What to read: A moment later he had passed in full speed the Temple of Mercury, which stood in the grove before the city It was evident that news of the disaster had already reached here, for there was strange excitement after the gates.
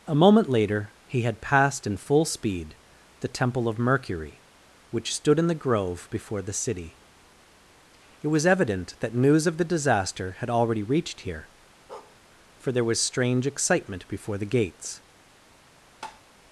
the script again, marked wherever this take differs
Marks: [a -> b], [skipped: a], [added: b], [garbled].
A moment later he had passed in full speed the Temple of Mercury, which stood in the grove before the city It was evident that news of the disaster had already reached here, for there was strange excitement [after -> before] the gates.